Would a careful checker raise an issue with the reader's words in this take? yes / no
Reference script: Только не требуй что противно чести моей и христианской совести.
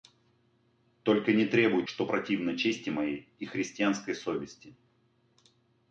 no